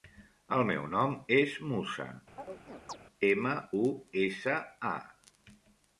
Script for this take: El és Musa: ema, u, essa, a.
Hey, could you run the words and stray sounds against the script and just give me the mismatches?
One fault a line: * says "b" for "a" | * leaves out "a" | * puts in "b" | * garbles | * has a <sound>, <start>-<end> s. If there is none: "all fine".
* puts in "meu nom"
* has a chirp, 2.4-3.0 s